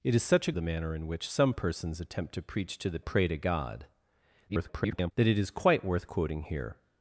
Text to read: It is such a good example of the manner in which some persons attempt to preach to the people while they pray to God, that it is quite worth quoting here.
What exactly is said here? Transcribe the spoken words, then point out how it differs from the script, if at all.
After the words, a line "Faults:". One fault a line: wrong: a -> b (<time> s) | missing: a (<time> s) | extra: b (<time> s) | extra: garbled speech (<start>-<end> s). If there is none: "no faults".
It is such a the manner in which some persons attempt to preach to the pray to God, [garbled] that it is quite worth quoting here.
Faults:
missing: good example of (0.5 s)
missing: people while they (3.0 s)
extra: garbled speech (4.5-5.1 s)